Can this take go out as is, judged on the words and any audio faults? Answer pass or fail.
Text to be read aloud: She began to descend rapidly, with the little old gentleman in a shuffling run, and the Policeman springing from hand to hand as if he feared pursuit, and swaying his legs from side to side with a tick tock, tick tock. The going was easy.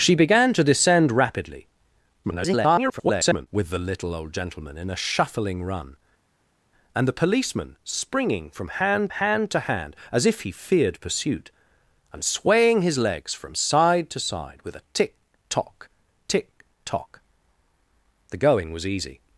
fail